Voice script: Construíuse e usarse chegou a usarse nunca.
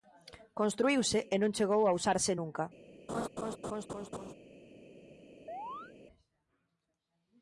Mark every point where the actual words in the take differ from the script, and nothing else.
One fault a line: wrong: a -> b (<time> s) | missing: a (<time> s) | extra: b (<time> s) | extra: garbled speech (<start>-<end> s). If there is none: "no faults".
wrong: usarse -> non (1.4 s)